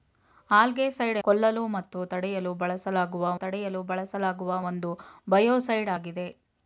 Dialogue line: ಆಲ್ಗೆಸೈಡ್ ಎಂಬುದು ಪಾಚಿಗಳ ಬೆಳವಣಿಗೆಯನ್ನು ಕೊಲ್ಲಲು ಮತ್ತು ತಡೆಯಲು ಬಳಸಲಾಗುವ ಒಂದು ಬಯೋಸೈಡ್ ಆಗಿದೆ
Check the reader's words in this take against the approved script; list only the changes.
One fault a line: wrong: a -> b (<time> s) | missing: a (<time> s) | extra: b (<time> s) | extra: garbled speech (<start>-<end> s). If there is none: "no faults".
wrong: ಎಂಬುದು ಪಾಚಿಗಳ ಬೆಳವಣಿಗೆಯನ್ನು ಕೊಲ್ಲಲು ಮತ್ತು -> ಕೊಲ್ಲಲು ಮತ್ತು ತಡೆಯಲು ಬಳಸಲಾಗುವ (1.2 s)